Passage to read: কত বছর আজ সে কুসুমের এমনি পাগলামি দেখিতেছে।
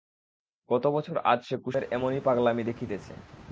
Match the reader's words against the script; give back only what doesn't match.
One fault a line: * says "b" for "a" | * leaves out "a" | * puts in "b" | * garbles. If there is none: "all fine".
all fine